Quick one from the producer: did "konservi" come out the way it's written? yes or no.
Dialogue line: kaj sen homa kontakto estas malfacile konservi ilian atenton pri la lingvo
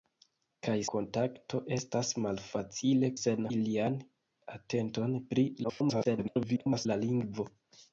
no